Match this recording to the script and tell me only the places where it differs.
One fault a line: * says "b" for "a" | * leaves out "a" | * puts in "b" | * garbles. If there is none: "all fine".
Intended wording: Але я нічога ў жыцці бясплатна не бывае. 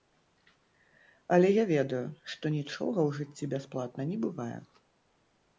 * puts in "ведаю што"